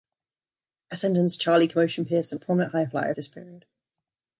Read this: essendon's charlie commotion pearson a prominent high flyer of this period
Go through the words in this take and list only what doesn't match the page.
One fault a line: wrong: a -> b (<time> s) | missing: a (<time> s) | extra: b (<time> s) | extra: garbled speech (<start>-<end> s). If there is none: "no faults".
no faults